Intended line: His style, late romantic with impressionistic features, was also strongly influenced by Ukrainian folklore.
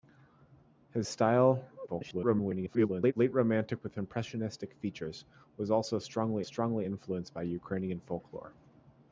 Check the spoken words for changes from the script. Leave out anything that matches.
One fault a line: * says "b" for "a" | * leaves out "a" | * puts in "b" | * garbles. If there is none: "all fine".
* garbles
* puts in "strongly"